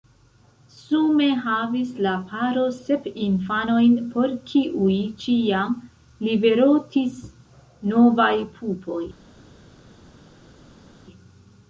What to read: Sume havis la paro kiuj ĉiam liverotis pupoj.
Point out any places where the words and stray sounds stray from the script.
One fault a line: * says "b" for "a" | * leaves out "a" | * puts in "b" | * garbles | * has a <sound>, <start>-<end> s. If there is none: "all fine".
* puts in "sep infanojn por"
* puts in "novaj"